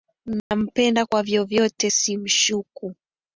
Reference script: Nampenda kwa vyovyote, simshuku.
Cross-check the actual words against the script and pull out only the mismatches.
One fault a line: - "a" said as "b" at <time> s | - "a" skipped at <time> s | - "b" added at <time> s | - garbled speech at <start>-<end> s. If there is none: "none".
none